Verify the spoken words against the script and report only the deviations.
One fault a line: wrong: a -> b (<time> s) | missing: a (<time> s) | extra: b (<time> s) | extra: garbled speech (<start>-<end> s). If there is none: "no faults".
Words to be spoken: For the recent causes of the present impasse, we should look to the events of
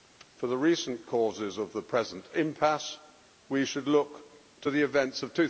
no faults